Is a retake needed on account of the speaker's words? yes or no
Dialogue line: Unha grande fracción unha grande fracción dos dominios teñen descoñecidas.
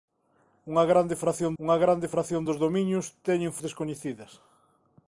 no